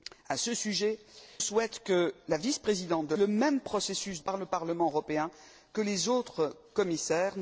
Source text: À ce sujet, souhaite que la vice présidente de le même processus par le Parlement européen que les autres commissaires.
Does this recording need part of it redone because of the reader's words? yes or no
no